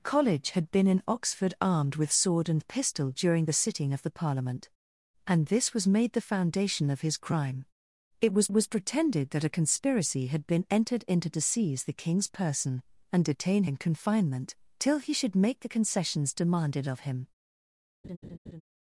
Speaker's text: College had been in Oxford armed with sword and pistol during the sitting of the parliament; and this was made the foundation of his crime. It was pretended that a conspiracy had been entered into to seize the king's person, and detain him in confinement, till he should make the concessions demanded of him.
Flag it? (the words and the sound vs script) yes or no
yes